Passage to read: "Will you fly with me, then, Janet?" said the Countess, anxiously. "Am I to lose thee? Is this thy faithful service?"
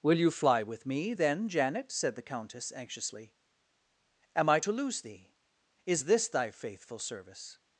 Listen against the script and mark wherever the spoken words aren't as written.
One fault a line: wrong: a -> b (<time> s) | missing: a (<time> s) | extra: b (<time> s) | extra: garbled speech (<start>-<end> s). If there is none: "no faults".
no faults